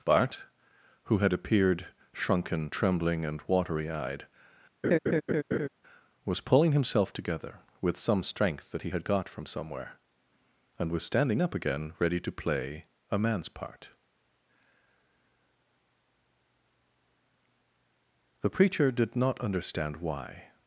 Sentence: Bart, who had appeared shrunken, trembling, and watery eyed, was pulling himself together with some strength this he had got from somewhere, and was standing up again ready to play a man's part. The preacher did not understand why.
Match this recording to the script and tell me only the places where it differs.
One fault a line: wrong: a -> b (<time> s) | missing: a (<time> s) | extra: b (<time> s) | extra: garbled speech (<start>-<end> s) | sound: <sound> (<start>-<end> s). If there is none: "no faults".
sound: laugh (4.8-5.7 s)
wrong: this -> that (8.7 s)